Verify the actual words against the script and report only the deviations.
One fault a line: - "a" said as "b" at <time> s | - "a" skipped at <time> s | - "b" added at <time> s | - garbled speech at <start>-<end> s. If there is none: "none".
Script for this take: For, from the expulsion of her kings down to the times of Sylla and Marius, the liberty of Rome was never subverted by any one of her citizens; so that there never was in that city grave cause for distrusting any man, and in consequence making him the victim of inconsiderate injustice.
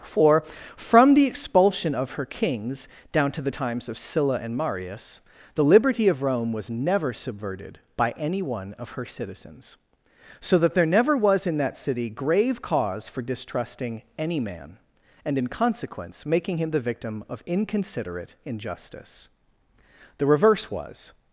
- "The reverse was" added at 20.2 s